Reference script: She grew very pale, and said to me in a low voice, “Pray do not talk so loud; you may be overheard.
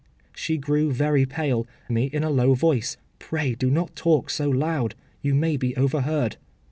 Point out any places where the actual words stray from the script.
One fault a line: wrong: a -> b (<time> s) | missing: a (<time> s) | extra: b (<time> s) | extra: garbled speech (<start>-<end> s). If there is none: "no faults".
missing: and said to (1.7 s)